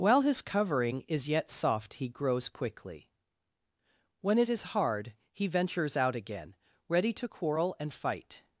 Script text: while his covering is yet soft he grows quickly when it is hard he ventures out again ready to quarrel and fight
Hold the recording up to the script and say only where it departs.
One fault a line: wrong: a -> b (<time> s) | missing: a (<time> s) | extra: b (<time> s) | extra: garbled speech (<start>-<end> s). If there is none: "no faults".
no faults